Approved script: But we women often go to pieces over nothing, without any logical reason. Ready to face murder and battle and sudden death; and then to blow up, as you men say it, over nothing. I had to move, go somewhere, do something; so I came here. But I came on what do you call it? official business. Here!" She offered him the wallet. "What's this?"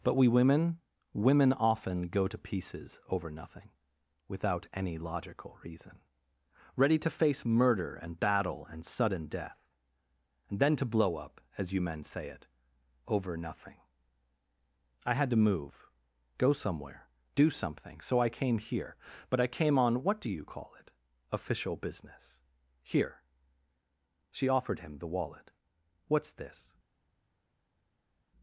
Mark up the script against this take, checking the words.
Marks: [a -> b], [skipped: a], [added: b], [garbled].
But we women [added: women] often go to pieces over nothing, without any logical reason. Ready to face murder and battle and sudden death; and then to blow up, as you men say it, over nothing. I had to move, go somewhere, do something; so I came here. But I came on what do you call it? official business. Here!" She offered him the wallet. "What's this?"